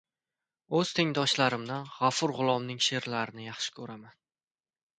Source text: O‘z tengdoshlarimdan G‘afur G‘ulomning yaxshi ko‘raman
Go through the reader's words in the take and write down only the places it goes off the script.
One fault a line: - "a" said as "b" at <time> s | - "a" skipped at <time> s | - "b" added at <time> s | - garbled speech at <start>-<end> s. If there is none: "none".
- "she'rlarini" added at 2.9 s